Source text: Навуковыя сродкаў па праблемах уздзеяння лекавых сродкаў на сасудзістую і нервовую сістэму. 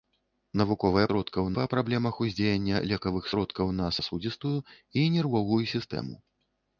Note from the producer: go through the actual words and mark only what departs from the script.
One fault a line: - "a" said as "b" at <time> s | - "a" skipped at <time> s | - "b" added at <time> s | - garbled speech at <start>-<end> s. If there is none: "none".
none